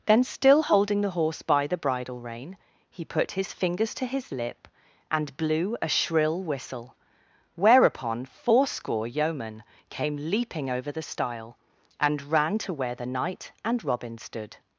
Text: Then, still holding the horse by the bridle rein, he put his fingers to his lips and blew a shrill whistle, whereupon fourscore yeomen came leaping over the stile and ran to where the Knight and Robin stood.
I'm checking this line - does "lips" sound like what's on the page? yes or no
no